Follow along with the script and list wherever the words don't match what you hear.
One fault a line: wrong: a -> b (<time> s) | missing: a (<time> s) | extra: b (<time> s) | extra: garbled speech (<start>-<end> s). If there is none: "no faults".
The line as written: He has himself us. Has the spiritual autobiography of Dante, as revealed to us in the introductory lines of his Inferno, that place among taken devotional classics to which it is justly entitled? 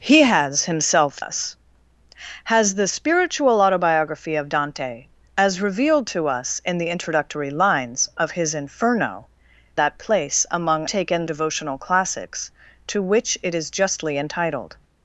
no faults